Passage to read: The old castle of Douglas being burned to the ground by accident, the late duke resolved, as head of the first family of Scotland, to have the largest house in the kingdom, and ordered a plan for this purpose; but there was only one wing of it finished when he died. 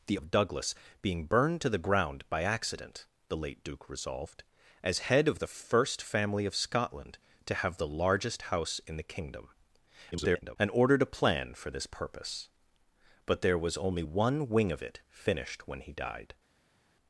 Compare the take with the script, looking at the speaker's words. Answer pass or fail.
fail